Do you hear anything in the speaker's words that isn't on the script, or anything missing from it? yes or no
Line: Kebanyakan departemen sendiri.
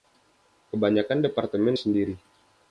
no